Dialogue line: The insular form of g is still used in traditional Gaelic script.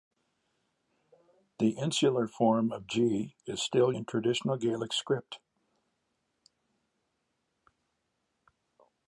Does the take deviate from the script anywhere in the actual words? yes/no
yes